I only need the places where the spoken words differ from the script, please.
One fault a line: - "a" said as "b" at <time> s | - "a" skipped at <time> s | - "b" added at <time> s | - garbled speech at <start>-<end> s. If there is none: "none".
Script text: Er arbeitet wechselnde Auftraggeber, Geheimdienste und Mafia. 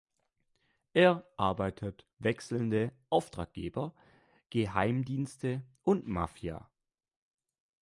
none